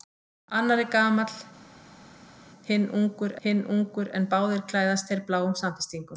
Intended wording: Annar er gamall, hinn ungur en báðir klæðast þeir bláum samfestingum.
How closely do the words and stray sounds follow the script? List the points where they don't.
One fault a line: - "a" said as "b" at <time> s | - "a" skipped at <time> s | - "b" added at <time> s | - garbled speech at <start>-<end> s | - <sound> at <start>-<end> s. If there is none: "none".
- "hinn ungur" added at 3.5 s